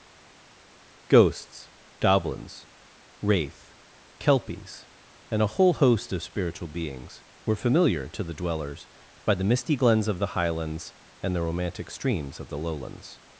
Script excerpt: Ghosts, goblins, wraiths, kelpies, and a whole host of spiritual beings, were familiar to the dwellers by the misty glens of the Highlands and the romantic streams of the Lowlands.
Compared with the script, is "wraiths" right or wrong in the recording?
wrong